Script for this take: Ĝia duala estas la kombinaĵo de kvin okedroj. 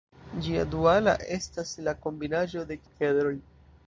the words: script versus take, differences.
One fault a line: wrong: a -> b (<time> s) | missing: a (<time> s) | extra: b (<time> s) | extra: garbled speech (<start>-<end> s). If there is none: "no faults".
missing: kvin (2.8 s)